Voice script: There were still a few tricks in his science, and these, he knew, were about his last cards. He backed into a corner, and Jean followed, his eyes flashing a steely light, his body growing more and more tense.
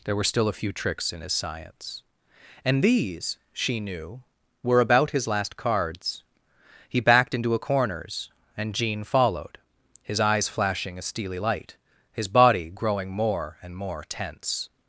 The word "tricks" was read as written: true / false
true